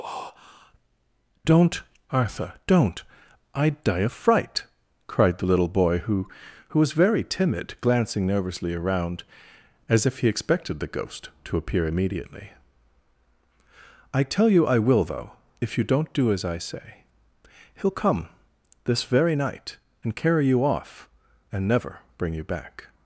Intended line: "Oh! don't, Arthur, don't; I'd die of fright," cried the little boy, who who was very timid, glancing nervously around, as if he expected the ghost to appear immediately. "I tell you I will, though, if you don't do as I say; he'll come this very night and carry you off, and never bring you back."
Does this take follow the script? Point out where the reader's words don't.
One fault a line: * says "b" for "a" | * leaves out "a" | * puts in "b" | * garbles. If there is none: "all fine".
all fine